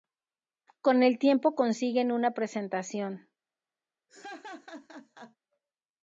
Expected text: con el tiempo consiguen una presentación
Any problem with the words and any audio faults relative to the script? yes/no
yes